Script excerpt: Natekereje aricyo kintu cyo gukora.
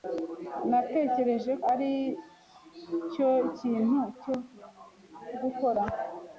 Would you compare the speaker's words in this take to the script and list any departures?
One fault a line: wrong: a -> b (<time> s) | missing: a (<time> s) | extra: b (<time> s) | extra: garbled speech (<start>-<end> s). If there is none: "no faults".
no faults